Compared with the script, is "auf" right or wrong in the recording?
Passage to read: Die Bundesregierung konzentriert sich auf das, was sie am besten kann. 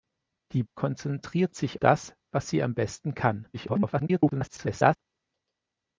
wrong